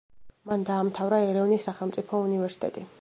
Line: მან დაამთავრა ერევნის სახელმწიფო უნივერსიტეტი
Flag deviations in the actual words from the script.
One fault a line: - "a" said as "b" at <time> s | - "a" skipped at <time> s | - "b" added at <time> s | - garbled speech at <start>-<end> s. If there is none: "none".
none